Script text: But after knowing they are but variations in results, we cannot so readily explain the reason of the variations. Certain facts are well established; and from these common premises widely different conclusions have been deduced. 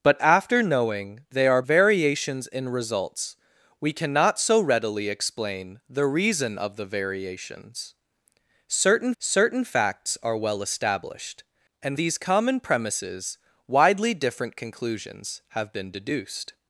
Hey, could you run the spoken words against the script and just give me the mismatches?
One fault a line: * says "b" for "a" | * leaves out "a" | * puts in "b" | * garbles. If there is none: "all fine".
* leaves out "but"
* puts in "certain"
* leaves out "from"